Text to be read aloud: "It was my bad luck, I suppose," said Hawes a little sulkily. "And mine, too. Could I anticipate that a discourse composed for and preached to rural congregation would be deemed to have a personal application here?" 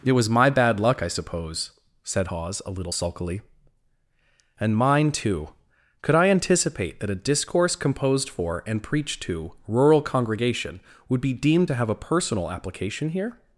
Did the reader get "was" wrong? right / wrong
right